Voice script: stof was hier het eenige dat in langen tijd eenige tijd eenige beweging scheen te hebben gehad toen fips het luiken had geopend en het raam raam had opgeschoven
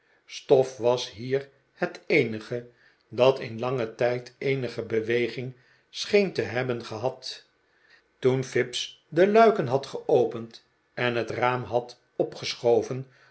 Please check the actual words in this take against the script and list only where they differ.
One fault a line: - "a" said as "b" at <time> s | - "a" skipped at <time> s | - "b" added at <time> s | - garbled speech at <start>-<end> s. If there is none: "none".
- "tijd eenige" skipped at 4.8 s
- "het" said as "de" at 9.1 s
- "raam" skipped at 11.6 s